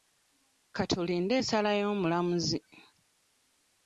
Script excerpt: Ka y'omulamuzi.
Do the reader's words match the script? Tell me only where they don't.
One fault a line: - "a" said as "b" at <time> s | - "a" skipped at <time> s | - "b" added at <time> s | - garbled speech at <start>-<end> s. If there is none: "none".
- "tulinde ensala" added at 0.9 s